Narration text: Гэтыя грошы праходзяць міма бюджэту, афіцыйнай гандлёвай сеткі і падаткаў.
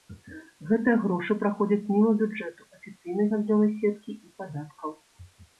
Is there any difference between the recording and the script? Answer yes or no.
no